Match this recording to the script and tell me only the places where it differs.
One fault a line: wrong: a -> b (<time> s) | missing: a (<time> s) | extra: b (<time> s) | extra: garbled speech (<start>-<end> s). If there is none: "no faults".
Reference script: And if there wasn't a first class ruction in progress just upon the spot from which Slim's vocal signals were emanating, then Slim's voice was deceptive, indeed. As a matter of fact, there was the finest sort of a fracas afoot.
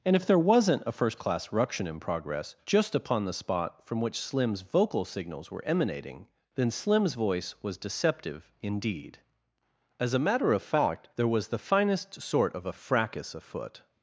no faults